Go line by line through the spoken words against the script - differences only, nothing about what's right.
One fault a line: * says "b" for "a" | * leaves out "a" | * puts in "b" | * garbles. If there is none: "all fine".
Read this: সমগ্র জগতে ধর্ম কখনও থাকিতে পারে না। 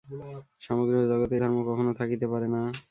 all fine